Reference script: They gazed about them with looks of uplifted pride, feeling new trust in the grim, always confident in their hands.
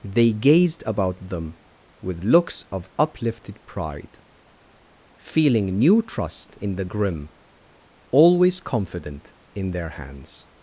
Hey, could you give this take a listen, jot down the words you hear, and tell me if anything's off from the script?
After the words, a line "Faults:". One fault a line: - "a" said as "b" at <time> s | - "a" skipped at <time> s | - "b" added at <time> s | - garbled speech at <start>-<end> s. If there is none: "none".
They gazed about them with looks of uplifted pride, feeling new trust in the grim, always confident in their hands.
Faults:
none